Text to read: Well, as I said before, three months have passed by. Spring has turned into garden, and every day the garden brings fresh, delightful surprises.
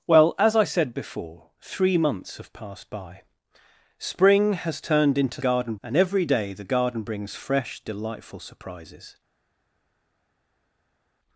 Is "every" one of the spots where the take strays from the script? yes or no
no